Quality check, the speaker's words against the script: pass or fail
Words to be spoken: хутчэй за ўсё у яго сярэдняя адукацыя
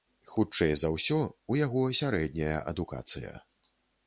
pass